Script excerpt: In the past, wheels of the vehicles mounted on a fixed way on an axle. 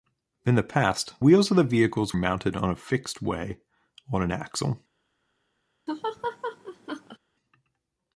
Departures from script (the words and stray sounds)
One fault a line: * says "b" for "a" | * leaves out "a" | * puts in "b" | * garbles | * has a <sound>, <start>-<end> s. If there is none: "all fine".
* has a laugh, 5.9-7.2 s